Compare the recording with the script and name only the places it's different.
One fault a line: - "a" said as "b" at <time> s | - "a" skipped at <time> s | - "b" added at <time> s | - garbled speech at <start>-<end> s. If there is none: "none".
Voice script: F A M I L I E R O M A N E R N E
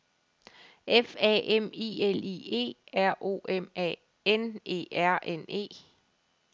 none